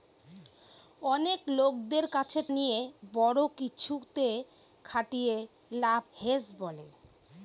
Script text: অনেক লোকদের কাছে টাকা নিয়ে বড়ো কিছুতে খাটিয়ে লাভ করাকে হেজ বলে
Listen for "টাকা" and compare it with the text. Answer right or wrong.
wrong